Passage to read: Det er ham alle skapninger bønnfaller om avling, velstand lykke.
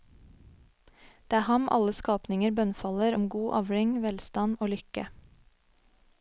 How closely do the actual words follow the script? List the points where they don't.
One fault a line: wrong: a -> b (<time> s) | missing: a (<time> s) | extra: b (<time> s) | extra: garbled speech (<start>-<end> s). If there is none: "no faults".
extra: god (3.3 s)
extra: og (4.6 s)